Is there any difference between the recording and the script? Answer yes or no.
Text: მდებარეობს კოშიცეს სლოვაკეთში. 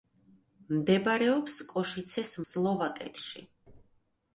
no